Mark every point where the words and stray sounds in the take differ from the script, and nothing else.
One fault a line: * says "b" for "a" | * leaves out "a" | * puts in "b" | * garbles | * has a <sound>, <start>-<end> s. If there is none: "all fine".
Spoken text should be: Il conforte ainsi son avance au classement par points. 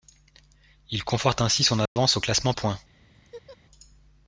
* has a dropout, 1.9-2.0 s
* leaves out "par"
* has a laugh, 3.1-3.6 s